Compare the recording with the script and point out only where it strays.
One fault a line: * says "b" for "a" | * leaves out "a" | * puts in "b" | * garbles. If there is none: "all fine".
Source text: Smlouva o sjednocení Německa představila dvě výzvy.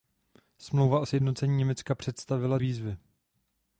* leaves out "dvě"